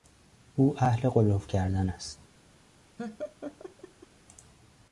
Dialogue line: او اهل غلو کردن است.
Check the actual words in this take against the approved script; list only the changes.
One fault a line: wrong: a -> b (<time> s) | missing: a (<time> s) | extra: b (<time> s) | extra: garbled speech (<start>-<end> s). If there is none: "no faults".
no faults